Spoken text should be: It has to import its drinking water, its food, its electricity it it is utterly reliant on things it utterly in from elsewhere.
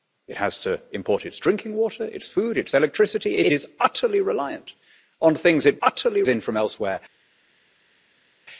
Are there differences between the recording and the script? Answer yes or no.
no